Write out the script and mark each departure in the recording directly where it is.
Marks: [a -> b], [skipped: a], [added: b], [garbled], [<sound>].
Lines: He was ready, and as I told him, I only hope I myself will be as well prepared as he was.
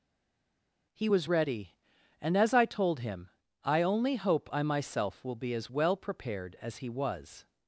He was ready, and as I told him, I only hope I myself will be as well prepared as he was.